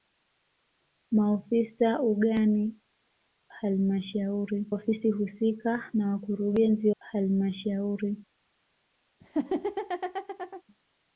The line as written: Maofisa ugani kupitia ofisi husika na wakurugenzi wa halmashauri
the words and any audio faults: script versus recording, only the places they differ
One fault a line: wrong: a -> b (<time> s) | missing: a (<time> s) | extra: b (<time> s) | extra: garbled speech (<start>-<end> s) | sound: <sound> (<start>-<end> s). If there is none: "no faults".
wrong: kupitia -> halmashauri (3.5 s)
missing: wa (6.9 s)
sound: laugh (9.2-10.6 s)